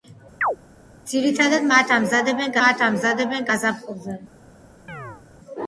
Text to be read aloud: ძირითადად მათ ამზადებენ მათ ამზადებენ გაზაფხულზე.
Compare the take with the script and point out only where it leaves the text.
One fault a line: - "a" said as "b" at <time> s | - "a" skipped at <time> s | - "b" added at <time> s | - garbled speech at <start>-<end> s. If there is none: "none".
none